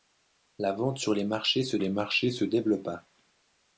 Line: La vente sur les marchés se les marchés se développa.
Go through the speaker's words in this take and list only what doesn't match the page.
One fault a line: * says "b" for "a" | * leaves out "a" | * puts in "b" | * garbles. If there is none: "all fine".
all fine